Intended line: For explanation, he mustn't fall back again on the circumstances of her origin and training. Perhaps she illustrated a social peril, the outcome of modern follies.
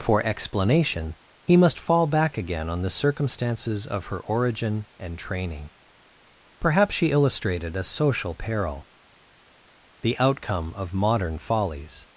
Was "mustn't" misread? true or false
true